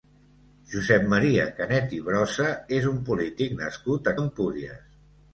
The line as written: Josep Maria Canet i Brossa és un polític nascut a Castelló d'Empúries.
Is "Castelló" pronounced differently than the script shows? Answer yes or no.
yes